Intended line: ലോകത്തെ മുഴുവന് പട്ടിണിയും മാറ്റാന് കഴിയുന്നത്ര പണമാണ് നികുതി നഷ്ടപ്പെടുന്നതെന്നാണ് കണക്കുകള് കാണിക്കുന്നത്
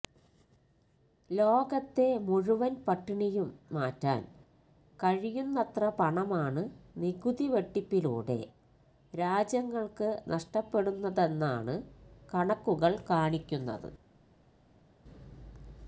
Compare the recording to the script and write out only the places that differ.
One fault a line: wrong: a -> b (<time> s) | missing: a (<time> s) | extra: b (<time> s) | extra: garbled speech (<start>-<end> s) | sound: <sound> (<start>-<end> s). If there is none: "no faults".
extra: വെട്ടിപ്പിലൂടെ രാജ്യങ്ങള്ക്ക് (7.5 s)